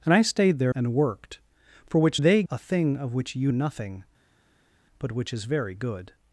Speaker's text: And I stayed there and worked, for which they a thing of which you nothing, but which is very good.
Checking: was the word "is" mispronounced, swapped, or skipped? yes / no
no